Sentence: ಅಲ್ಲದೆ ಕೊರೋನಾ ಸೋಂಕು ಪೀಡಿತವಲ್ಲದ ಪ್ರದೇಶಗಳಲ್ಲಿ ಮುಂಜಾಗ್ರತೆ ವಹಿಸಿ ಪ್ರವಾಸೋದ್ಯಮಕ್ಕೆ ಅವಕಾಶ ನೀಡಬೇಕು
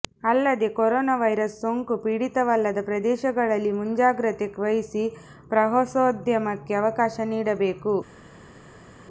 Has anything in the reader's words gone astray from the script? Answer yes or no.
yes